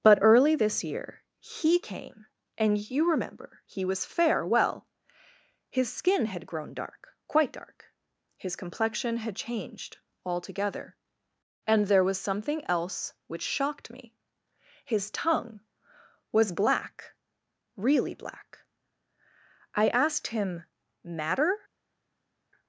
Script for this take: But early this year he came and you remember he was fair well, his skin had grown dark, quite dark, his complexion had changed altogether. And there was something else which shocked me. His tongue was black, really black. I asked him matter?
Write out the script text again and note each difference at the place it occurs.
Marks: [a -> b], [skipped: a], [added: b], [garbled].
But early this year he came and you remember he was fair well, his skin had grown dark, quite dark, his complexion had changed altogether. And there was something else which shocked me. His tongue was black, really black. I asked him matter?